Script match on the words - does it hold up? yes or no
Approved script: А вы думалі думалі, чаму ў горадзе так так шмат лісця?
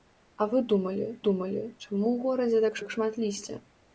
yes